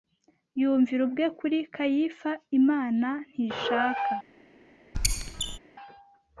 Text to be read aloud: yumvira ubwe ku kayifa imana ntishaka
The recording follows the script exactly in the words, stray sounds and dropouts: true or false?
false